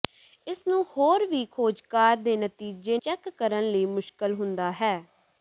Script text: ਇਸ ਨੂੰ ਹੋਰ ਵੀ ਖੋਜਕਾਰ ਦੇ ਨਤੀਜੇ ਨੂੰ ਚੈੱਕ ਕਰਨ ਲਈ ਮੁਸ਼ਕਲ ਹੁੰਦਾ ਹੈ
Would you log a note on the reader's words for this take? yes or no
yes